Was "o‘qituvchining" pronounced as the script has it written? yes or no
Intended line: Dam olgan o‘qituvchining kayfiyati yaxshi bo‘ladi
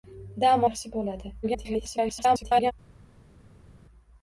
no